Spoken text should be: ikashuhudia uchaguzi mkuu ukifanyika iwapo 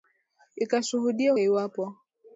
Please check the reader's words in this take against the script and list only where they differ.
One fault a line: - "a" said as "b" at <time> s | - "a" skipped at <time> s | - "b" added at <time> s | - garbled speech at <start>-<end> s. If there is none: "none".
- "uchaguzi mkuu ukifanyika" skipped at 1.3 s